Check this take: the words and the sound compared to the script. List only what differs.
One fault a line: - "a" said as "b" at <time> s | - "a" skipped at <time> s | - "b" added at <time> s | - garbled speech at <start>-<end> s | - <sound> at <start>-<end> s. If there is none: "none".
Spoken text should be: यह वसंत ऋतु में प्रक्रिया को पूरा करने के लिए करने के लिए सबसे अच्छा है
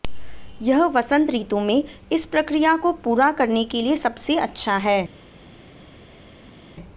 - "इस" added at 2.1 s
- "करने के लिए" skipped at 4.0 s